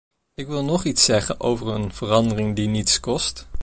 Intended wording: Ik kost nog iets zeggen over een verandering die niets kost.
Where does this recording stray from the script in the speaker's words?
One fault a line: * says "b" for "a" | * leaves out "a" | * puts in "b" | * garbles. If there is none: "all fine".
* says "wil" for "kost"